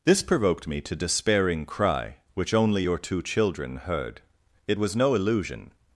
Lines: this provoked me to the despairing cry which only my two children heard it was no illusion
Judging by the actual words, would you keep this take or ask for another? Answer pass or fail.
fail